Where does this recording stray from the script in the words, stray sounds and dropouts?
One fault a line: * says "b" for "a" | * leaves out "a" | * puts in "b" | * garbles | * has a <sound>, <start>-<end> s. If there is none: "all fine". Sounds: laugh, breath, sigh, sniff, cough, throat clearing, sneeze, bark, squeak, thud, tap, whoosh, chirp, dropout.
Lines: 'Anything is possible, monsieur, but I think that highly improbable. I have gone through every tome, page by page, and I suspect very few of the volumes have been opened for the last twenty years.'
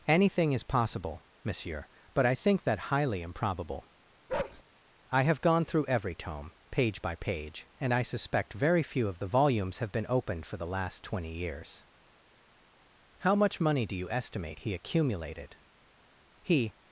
* has a bark, 4.3-4.6 s
* puts in "How much money do you estimate he accumulated He"